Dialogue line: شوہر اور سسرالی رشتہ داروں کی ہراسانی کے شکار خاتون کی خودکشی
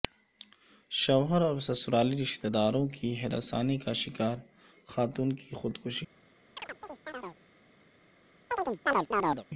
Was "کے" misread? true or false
true